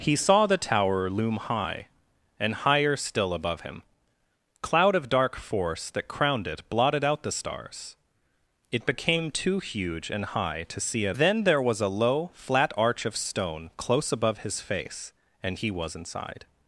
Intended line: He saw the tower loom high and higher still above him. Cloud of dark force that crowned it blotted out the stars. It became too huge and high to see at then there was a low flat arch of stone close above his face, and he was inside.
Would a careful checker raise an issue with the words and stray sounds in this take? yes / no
no